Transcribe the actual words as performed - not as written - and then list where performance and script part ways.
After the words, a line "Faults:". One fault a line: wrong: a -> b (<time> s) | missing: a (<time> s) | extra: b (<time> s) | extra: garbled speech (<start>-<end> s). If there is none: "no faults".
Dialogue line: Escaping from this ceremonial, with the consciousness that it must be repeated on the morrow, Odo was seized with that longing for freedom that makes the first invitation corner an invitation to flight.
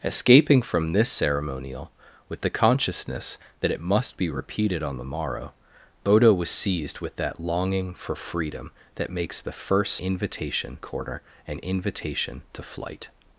Escaping from this ceremonial, with the consciousness that it must be repeated on the morrow, Odo was seized with that longing for freedom that makes the first invitation corner an invitation to flight.
Faults:
no faults